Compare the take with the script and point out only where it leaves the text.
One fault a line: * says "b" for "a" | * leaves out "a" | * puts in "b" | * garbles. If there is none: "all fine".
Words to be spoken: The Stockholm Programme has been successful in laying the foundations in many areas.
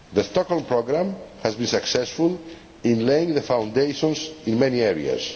all fine